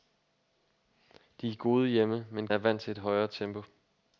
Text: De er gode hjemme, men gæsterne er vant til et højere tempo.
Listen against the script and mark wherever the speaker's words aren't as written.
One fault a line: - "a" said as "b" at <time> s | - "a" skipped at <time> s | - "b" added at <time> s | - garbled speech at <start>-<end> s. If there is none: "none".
- "gæsterne" skipped at 2.5 s